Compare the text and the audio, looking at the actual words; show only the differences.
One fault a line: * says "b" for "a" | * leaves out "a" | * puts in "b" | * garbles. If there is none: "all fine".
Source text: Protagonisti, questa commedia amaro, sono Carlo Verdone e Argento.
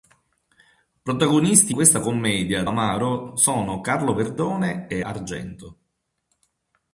all fine